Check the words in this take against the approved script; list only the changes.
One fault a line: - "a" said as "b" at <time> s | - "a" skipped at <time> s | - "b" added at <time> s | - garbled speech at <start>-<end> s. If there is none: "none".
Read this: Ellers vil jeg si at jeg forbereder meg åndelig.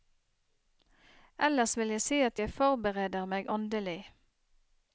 none